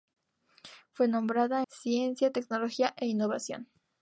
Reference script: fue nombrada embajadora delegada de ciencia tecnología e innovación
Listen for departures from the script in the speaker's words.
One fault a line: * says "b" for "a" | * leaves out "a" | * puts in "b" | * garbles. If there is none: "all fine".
* leaves out "embajadora delegada de"